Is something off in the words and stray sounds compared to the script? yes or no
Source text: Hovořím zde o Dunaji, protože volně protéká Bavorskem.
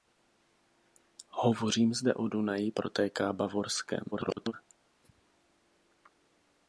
yes